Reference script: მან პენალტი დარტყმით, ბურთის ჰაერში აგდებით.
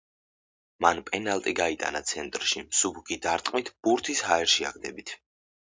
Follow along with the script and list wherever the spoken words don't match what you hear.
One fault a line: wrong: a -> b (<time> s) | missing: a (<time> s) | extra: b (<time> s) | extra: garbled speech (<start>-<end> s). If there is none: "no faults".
extra: გაიტანა ცენტრში მსუბუქი (1.6 s)